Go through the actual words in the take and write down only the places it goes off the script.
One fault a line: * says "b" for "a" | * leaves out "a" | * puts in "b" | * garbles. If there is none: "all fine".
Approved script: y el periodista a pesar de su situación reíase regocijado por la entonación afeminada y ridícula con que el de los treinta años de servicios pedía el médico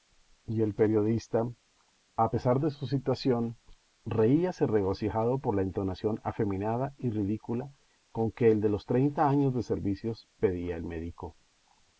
all fine